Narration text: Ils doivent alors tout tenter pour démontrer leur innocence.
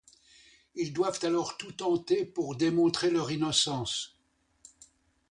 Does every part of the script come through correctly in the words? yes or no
yes